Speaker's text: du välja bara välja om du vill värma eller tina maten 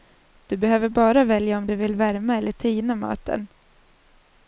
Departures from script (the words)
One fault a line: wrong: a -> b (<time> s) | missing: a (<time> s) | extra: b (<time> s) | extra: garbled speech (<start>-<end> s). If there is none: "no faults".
wrong: välja -> behöver (0.6 s)